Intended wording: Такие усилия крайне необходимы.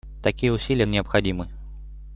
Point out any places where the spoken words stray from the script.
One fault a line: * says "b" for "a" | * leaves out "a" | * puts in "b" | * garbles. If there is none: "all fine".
* leaves out "крайне"